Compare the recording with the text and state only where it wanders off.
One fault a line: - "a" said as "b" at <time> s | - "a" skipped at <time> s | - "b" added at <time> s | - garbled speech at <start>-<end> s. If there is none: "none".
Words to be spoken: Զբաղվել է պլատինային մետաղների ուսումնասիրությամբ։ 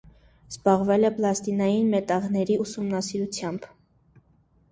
none